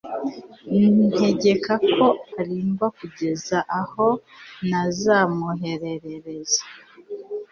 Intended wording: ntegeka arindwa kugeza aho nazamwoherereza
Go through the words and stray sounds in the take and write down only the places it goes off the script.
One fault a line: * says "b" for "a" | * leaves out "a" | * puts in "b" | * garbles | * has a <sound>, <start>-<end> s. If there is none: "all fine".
* puts in "ko"